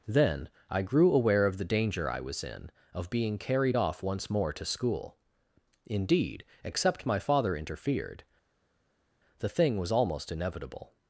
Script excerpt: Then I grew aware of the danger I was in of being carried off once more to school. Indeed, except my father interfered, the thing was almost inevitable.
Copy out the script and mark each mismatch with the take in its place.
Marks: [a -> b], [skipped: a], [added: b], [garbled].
Then I grew aware of the danger I was in of being carried off once more to school. Indeed, except my father interfered, the thing was almost inevitable.